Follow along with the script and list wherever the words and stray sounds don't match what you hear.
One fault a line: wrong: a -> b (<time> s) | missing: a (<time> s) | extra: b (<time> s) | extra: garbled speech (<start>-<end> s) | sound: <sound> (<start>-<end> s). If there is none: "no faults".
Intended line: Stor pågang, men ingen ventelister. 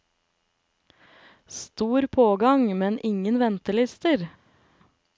no faults